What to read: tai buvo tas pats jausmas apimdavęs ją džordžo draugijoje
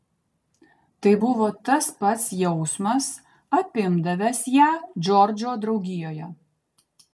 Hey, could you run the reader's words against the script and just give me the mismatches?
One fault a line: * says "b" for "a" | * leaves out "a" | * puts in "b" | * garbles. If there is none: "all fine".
all fine